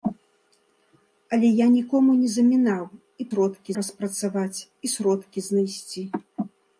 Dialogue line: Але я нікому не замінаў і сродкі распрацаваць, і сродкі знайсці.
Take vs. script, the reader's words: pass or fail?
pass